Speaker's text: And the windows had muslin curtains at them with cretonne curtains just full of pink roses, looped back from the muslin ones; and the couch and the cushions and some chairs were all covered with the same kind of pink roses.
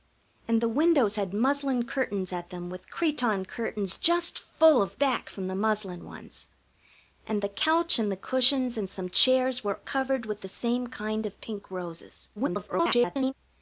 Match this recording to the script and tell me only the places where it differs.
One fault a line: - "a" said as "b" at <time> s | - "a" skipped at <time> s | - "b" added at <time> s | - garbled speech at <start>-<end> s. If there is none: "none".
- "pink roses looped" skipped at 5.0 s
- "all" skipped at 9.8 s
- garbled speech at 12.4-13.3 s